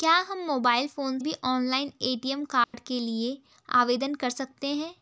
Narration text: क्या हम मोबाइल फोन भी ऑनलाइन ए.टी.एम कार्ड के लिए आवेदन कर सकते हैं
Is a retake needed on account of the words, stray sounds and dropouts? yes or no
yes